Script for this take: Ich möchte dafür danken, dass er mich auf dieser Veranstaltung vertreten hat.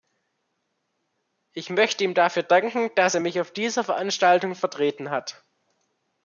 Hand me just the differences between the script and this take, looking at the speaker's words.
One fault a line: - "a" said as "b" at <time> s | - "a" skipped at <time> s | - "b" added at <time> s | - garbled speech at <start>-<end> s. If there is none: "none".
- "ihm" added at 2.0 s